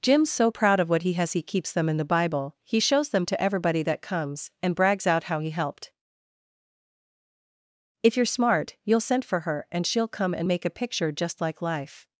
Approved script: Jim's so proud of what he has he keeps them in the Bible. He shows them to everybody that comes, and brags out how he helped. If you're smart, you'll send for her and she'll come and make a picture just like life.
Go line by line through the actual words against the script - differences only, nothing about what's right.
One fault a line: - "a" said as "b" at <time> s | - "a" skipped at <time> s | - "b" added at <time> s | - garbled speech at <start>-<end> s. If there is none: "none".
none